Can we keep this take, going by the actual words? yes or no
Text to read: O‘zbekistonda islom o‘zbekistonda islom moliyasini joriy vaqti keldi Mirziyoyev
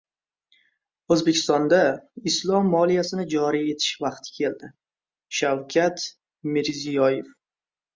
no